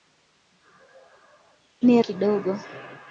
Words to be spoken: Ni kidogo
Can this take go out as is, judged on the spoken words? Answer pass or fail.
pass